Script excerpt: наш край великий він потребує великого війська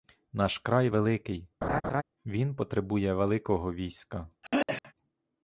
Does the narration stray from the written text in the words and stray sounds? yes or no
yes